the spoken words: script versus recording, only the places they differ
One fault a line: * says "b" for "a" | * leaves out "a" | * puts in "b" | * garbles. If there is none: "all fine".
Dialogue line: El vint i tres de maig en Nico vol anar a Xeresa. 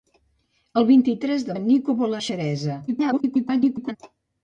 * leaves out "maig"
* leaves out "anar"
* garbles